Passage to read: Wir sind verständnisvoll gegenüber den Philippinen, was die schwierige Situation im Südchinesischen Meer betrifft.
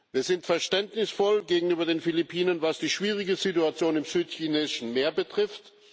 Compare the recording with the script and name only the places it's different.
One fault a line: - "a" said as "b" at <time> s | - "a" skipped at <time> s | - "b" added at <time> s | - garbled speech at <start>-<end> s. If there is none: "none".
none